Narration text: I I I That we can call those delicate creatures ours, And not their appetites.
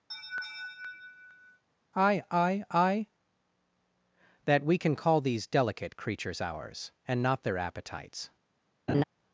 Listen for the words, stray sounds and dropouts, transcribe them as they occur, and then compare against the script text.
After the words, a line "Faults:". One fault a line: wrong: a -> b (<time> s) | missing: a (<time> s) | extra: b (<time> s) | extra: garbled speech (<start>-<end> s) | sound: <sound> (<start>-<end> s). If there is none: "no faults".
I I I That we can call these delicate creatures ours, And not their appetites.
Faults:
sound: laugh (0.1-1.6 s)
wrong: those -> these (5.2 s)
sound: laugh (8.9-9.0 s)